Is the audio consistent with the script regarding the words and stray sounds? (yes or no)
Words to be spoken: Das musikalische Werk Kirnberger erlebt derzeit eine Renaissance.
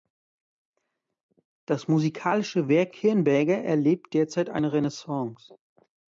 yes